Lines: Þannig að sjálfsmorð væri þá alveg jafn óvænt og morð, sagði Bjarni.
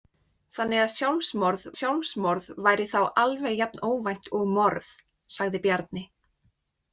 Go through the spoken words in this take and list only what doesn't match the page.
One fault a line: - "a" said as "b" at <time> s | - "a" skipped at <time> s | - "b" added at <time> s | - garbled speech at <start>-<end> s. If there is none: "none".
- "sjálfsmorð" added at 1.7 s